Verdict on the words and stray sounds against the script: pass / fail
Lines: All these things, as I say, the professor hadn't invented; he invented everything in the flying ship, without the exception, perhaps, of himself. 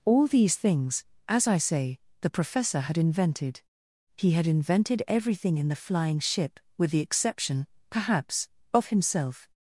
fail